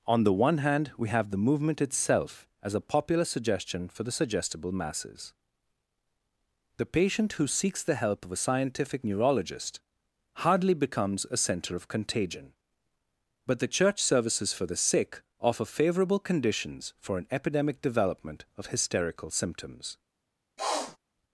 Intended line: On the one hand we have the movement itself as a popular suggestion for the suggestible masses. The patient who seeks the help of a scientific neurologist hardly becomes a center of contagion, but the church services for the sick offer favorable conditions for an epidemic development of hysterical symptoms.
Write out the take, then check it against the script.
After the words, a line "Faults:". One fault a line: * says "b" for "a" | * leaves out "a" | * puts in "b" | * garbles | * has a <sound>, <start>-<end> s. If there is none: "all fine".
On the one hand we have the movement itself as a popular suggestion for the suggestible masses. The patient who seeks the help of a scientific neurologist hardly becomes a center of contagion, but the church services for the sick offer favorable conditions for an epidemic development of hysterical symptoms.
Faults:
* has a sniff, 20.6-21.0 s